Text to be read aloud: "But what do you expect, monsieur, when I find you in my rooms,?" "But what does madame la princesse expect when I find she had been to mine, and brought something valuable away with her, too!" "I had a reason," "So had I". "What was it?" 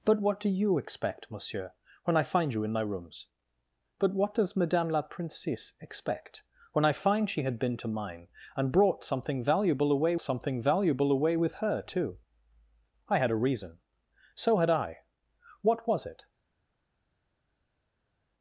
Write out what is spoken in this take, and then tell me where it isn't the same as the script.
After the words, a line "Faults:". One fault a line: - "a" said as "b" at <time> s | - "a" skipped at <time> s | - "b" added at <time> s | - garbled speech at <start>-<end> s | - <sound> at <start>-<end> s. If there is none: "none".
"But what do you expect, monsieur, when I find you in my rooms,?" "But what does madame la princesse expect when I find she had been to mine, and brought something valuable away something valuable away with her, too!" "I had a reason," "So had I". "What was it?"
Faults:
- "something valuable away" added at 10.2 s